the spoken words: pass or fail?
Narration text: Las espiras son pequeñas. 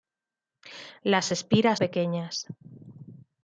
fail